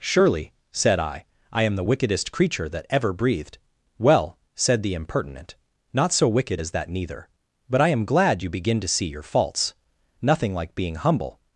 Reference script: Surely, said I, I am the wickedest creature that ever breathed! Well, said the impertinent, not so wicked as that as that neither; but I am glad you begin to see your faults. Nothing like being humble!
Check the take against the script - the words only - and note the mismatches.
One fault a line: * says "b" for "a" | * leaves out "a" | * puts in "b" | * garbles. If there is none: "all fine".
* leaves out "as that"